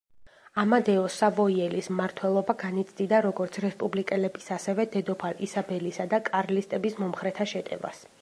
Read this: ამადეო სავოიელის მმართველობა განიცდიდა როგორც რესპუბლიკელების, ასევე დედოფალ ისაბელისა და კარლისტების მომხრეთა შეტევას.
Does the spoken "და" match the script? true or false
true